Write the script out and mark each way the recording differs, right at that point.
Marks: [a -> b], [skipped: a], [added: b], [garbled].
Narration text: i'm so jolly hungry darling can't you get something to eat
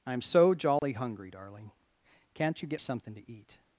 i'm so jolly hungry darling can't you get something to eat